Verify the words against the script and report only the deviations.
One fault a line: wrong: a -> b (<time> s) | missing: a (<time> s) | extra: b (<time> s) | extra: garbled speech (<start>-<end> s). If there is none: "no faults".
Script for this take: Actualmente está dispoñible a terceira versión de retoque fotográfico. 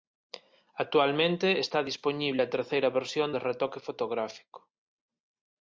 no faults